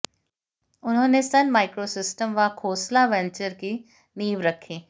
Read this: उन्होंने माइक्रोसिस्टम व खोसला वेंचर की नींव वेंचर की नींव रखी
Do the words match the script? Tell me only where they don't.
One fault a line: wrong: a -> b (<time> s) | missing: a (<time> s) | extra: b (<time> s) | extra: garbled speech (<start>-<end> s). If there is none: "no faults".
extra: सन (1.2 s)
missing: वेंचर की नींव (4.4 s)